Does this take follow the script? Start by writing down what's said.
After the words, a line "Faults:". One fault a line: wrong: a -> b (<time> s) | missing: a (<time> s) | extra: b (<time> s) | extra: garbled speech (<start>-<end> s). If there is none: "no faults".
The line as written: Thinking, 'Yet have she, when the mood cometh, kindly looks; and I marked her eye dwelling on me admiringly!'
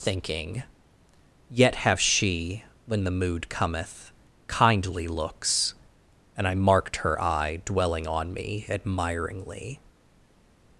Thinking, 'Yet have she, when the mood cometh, kindly looks; and I marked her eye dwelling on me admiringly!'
Faults:
no faults